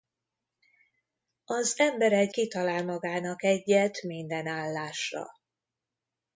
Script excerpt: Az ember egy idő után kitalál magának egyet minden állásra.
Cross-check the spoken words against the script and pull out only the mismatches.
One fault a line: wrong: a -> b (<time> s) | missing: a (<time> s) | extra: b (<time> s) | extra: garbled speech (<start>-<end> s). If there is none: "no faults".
missing: idő után (2.3 s)